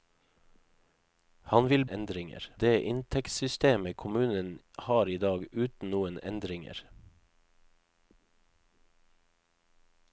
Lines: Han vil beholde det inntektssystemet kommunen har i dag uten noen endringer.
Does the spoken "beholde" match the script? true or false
false